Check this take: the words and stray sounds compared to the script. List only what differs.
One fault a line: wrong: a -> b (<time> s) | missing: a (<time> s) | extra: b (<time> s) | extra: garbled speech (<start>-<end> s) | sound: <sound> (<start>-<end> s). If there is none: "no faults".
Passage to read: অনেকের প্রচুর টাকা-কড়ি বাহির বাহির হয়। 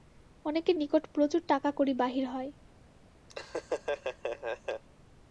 extra: নিকট (0.7 s)
missing: বাহির (2.2 s)
sound: laugh (3.3-4.8 s)